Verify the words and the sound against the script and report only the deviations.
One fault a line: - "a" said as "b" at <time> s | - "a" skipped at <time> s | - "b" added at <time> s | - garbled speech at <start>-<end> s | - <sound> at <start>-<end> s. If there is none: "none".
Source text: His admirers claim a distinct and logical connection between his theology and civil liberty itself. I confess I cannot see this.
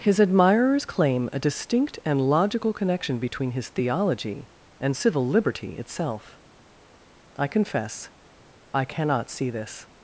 none